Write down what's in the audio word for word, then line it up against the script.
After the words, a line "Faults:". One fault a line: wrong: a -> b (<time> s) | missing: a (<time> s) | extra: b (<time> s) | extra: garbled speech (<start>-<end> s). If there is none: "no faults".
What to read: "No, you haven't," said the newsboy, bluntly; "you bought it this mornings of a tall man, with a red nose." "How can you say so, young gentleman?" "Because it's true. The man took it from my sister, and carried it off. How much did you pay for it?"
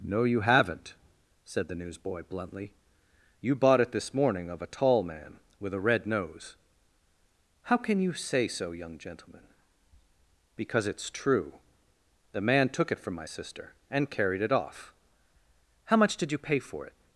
"No, you haven't," said the newsboy, bluntly; "you bought it this morning of a tall man, with a red nose." "How can you say so, young gentleman?" "Because it's true. The man took it from my sister, and carried it off. How much did you pay for it?"
Faults:
wrong: mornings -> morning (4.1 s)